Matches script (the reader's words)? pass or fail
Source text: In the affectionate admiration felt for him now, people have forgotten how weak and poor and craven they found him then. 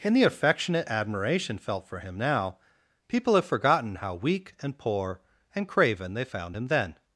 pass